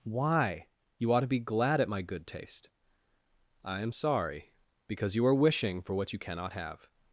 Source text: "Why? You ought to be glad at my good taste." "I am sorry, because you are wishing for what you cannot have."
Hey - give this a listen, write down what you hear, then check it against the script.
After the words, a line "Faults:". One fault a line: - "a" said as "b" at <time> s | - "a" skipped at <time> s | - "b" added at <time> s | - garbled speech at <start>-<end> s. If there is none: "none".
"Why? You ought to be glad at my good taste." "I am sorry, because you are wishing for what you cannot have."
Faults:
none